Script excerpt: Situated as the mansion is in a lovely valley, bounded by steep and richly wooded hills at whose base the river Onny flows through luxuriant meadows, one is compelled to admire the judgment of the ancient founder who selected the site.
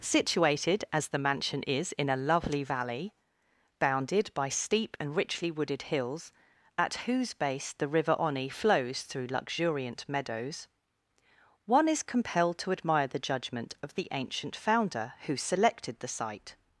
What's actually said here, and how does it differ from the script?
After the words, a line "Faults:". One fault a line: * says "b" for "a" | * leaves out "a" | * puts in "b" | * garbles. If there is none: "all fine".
Situated as the mansion is in a lovely valley, bounded by steep and richly wooded hills at whose base the river Onny flows through luxuriant meadows, one is compelled to admire the judgment of the ancient founder who selected the site.
Faults:
all fine